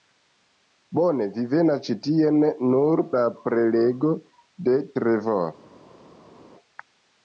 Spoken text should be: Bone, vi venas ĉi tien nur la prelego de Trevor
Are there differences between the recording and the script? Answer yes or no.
no